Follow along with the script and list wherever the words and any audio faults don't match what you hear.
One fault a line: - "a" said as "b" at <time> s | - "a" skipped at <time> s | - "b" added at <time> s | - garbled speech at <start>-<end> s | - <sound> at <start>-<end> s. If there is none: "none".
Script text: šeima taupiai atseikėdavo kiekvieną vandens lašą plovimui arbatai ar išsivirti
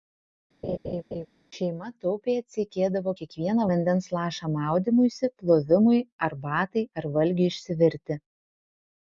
- laugh at 0.6-1.3 s
- "maudymuisi" added at 4.6 s
- "valgiui" added at 7.2 s